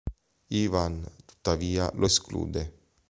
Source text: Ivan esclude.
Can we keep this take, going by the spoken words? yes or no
no